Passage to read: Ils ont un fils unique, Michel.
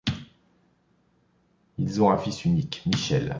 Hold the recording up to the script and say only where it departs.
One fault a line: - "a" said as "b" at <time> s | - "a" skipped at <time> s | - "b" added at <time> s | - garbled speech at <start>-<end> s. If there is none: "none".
none